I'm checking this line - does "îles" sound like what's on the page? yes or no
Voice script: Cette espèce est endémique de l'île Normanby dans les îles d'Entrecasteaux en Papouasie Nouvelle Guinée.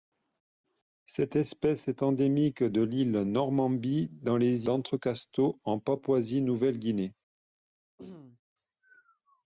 no